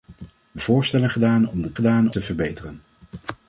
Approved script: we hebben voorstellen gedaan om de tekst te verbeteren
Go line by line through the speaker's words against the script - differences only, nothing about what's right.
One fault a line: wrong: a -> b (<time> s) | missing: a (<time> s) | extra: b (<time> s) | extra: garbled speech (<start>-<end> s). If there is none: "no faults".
missing: hebben (0.6 s)
wrong: tekst -> gedaan (1.7 s)